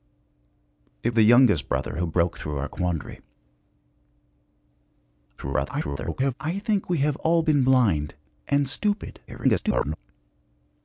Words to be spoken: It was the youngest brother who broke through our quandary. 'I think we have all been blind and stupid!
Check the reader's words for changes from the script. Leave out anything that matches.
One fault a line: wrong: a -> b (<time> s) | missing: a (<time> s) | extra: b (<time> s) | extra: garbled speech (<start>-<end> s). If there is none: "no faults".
missing: was (1.1 s)
extra: garbled speech (5.4-6.3 s)
extra: garbled speech (9.3-10.0 s)